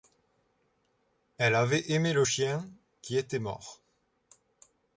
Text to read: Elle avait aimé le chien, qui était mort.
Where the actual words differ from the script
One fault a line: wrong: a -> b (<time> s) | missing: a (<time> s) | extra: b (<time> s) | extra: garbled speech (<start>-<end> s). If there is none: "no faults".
no faults